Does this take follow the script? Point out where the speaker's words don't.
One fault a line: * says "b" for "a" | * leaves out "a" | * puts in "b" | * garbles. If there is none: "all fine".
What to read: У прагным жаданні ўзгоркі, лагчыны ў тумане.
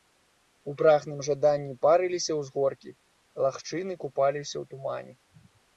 * puts in "парыліся"
* puts in "купаліся"